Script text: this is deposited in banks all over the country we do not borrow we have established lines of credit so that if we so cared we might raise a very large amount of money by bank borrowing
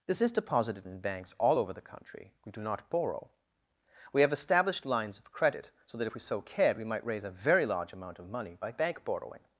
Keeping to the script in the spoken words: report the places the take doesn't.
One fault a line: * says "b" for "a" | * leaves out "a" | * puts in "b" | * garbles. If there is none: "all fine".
all fine